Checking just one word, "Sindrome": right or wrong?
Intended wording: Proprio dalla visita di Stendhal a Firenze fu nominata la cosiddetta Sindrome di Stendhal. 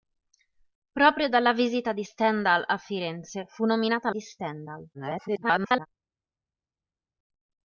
wrong